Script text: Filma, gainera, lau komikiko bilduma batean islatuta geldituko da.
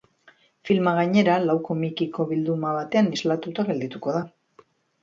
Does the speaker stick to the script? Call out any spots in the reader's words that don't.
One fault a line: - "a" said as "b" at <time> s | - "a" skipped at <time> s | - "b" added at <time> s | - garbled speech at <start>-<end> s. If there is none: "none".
none